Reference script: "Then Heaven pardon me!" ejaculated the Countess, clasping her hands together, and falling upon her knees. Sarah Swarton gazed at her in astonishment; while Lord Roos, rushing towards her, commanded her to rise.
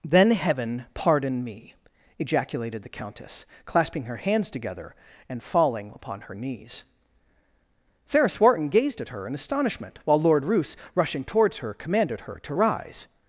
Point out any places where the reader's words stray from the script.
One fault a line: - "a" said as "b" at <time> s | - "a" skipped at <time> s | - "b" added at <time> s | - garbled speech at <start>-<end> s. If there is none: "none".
none